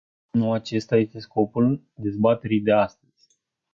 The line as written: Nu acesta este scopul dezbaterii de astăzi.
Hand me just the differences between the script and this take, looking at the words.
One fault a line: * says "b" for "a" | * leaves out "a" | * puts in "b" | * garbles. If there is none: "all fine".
all fine